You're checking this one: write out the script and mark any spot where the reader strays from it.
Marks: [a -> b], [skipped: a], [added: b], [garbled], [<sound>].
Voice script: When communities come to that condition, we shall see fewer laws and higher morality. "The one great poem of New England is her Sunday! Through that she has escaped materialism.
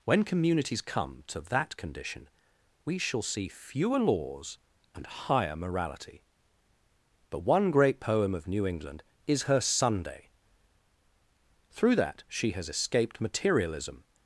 When communities come to that condition, we shall see fewer laws and higher morality. ["The -> But] one great poem of New England is her Sunday! Through that she has escaped materialism.